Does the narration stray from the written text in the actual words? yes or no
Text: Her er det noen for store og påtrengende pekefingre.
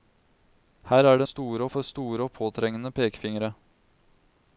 yes